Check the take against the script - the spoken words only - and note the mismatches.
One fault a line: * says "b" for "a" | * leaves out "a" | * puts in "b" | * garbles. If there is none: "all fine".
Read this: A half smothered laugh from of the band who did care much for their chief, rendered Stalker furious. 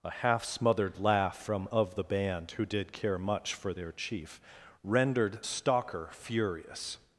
all fine